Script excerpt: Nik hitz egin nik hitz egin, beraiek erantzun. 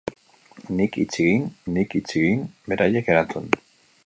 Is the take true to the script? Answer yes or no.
yes